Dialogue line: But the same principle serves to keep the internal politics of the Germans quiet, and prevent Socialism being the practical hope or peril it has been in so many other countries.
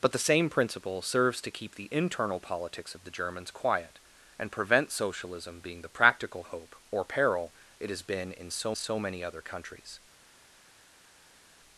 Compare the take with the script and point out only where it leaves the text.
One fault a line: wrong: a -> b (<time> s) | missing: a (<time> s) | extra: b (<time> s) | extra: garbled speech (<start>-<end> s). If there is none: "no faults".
extra: so (8.7 s)